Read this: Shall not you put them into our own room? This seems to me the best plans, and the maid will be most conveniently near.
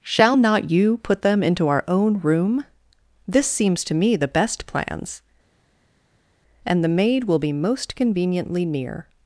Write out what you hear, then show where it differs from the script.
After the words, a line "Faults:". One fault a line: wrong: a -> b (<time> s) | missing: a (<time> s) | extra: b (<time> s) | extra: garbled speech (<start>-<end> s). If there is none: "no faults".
Shall not you put them into our own room? This seems to me the best plans, and the maid will be most conveniently near.
Faults:
no faults